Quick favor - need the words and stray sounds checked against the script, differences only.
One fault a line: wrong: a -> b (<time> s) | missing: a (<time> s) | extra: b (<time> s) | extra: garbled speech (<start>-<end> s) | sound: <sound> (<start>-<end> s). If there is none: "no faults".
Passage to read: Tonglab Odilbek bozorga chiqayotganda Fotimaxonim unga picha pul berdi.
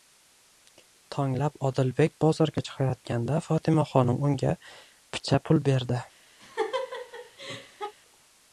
sound: laugh (6.4-7.9 s)